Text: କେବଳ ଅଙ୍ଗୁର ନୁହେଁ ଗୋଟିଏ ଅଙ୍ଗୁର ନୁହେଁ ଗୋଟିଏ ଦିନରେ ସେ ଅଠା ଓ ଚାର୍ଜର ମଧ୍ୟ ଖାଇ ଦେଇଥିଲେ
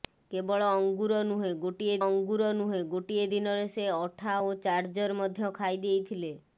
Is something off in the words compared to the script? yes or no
no